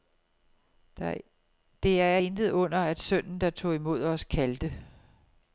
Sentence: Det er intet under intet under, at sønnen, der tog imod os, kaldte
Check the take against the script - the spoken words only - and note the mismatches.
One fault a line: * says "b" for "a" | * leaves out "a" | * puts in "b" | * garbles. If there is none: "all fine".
* leaves out "intet under"